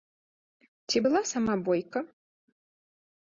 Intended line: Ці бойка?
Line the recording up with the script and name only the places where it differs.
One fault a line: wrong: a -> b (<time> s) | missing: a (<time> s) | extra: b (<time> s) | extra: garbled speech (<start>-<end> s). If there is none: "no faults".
extra: была сама (1.0 s)